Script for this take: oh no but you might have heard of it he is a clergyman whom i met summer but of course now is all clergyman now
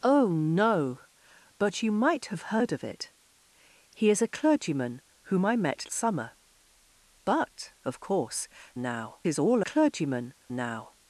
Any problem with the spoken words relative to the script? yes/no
no